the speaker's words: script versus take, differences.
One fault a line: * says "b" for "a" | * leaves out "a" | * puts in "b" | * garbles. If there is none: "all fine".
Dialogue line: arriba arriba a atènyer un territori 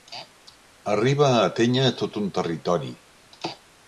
* leaves out "arriba"
* puts in "tot"